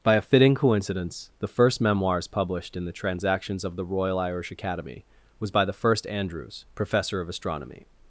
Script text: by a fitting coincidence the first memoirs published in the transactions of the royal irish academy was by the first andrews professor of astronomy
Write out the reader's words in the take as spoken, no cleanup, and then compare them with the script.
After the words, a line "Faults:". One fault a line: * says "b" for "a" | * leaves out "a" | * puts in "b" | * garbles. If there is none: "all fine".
by a fitting coincidence the first memoirs published in the transactions of the royal irish academy was by the first andrews professor of astronomy
Faults:
all fine